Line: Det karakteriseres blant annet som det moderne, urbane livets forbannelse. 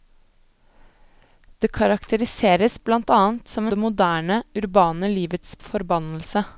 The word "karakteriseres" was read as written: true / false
true